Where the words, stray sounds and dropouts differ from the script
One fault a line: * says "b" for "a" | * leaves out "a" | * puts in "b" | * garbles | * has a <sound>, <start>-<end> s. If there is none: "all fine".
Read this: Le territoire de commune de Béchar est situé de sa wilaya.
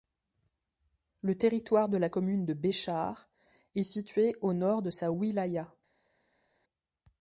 * puts in "la"
* puts in "au nord"